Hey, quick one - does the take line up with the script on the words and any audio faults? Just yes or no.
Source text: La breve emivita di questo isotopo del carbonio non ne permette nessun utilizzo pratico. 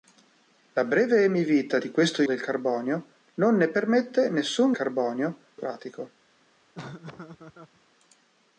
no